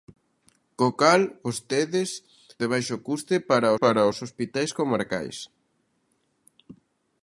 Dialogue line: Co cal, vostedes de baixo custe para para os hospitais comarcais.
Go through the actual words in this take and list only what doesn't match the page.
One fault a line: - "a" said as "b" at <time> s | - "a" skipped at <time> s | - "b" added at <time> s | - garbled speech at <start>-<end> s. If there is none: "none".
none